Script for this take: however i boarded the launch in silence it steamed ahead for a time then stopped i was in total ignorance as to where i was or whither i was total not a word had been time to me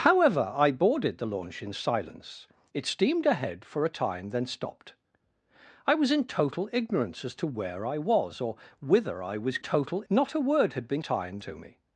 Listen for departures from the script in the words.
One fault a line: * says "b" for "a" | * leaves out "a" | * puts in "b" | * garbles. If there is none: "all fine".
all fine